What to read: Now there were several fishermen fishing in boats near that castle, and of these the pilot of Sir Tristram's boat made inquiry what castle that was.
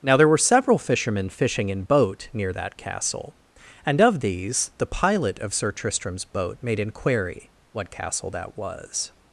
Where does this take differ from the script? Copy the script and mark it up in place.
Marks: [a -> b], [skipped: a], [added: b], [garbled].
Now there were several fishermen fishing in [boats -> boat] near that castle, and of these the pilot of Sir Tristram's boat made inquiry what castle that was.